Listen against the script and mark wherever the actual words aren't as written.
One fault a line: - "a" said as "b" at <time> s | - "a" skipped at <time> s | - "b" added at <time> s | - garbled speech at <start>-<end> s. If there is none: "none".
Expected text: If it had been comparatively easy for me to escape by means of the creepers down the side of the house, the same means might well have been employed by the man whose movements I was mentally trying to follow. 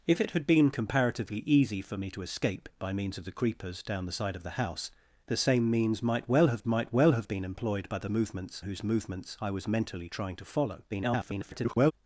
- "might well have" added at 6.6 s
- "man" said as "movements" at 8.1 s
- garbled speech at 10.9-11.9 s